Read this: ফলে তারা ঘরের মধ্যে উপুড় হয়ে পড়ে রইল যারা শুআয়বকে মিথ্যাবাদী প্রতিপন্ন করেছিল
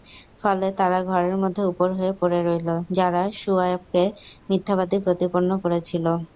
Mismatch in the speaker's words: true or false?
false